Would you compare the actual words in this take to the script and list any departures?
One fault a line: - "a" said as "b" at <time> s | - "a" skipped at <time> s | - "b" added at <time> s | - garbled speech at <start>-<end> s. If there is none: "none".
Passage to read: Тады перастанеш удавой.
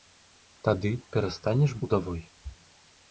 none